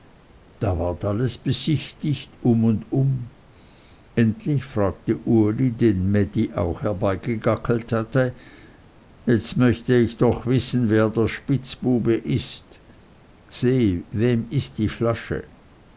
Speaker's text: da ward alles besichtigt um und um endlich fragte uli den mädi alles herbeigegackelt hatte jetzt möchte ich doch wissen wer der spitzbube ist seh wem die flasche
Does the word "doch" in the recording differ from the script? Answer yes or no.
no